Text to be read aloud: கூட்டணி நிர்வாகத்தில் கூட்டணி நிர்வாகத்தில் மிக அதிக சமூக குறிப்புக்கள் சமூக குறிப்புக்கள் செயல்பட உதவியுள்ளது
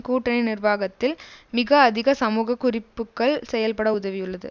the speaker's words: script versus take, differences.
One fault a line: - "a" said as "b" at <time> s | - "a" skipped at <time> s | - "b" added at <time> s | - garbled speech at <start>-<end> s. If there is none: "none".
- "கூட்டணி நிர்வாகத்தில்" skipped at 1.1 s
- "சமூக குறிப்புக்கள்" skipped at 3.4 s